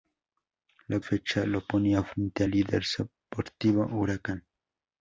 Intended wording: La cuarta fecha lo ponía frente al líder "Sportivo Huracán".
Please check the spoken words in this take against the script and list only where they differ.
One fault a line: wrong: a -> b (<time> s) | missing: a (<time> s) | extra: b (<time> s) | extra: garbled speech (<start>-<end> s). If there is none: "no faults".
missing: cuarta (1.0 s)